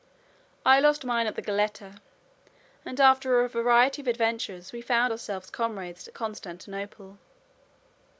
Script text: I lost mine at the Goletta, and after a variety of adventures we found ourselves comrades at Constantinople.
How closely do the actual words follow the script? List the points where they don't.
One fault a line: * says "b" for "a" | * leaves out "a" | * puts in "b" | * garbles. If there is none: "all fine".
all fine